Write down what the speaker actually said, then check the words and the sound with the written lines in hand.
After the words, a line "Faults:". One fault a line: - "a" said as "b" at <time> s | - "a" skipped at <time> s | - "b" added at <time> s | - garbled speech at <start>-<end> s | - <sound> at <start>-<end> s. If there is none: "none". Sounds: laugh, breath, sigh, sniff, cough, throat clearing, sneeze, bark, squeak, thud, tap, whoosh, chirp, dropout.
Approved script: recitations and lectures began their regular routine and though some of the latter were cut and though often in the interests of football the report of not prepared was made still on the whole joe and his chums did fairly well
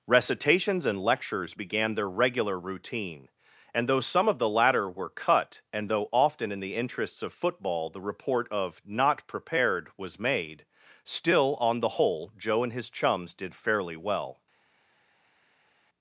recitations and lectures began their regular routine and though some of the latter were cut and though often in the interests of football the report of not prepared was made still on the whole joe and his chums did fairly well
Faults:
none